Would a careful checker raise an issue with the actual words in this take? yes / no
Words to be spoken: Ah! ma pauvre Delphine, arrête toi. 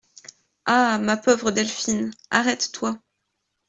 no